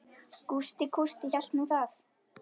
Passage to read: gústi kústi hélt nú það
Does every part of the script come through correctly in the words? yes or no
yes